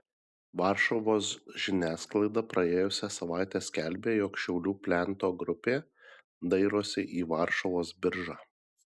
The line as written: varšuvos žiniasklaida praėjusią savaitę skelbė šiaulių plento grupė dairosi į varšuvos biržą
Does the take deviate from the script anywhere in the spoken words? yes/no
yes